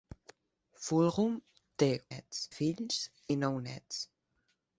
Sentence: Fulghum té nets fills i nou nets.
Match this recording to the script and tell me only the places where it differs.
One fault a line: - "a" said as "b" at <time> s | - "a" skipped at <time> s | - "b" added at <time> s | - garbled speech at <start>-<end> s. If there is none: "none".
none